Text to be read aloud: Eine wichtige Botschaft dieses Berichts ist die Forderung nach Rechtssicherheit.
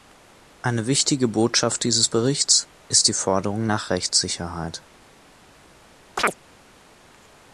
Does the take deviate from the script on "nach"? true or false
false